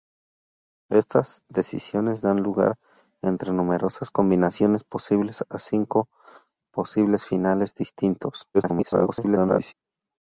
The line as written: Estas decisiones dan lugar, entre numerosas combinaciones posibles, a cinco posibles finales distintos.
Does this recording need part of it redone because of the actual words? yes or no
yes